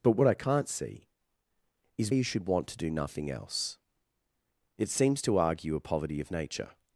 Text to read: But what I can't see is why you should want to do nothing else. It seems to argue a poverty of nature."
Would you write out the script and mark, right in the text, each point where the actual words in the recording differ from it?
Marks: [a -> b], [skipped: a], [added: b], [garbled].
But what I can't see is [skipped: why] you should want to do nothing else. It seems to argue a poverty of nature."